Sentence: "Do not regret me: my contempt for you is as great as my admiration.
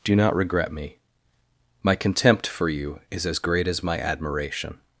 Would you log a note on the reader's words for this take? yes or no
no